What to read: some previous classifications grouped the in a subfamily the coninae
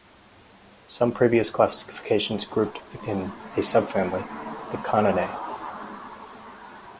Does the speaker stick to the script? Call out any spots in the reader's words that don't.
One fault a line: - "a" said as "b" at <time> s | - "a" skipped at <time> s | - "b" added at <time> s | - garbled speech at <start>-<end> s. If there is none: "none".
none